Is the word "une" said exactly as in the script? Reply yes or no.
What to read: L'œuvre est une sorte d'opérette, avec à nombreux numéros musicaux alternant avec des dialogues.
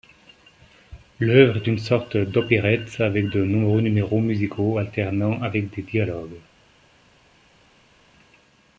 yes